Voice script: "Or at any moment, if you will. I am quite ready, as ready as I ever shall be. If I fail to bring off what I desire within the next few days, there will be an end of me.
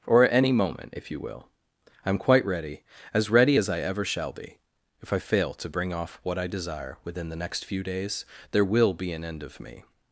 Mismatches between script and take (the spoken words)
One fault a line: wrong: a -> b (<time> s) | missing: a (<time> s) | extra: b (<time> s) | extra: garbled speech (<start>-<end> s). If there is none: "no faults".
no faults